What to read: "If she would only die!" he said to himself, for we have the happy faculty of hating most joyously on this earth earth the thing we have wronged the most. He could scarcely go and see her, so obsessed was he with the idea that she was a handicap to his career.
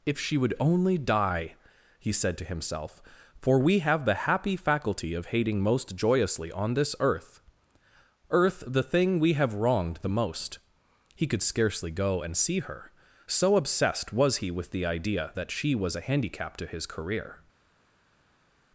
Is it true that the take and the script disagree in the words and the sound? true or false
false